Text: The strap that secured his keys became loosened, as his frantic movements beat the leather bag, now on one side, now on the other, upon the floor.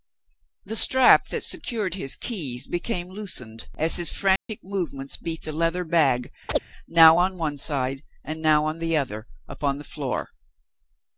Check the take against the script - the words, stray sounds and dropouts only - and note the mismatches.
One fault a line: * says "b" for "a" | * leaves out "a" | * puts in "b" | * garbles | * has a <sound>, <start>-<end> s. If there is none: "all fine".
* has a dropout, 4.4-4.5 s
* has a chirp, 6.5-6.6 s
* puts in "and"